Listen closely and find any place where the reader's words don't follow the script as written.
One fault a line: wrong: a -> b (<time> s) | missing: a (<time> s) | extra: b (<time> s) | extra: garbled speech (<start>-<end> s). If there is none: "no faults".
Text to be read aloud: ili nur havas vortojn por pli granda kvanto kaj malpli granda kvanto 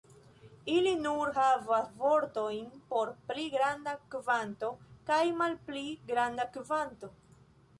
no faults